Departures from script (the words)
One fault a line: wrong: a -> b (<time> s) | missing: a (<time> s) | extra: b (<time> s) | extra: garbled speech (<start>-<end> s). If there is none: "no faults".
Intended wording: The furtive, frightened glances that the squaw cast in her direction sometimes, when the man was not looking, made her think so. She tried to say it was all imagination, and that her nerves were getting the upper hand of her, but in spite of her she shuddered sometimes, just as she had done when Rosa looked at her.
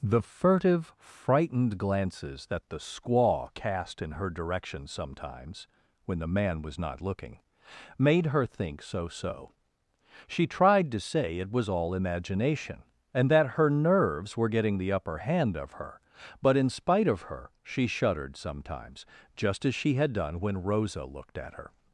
extra: so (9.1 s)